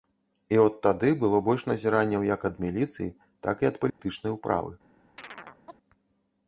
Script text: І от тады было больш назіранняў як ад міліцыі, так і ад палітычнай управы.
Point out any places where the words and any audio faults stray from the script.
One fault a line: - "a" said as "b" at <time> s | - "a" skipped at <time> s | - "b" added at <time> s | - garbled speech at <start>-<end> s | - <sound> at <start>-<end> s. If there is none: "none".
- dropout at 3.9-4.0 s
- chirp at 5.2-5.8 s